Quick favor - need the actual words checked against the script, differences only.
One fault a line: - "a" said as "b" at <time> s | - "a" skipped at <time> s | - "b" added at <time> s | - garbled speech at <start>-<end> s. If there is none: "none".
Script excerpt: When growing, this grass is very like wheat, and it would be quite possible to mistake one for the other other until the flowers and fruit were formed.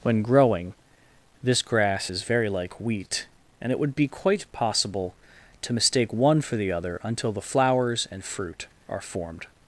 - "other" skipped at 7.0 s
- "were" said as "are" at 8.9 s